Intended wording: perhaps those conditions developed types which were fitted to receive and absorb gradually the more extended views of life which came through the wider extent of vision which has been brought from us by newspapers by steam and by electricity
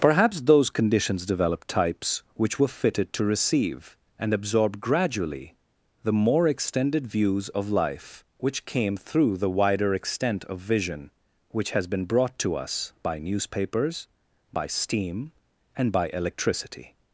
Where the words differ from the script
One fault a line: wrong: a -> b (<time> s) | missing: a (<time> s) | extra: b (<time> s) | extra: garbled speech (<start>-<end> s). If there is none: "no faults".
wrong: from -> to (12.4 s)